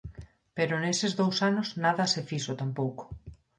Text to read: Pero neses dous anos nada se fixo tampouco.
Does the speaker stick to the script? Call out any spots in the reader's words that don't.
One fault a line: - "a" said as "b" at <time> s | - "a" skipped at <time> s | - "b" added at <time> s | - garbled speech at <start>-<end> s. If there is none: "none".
none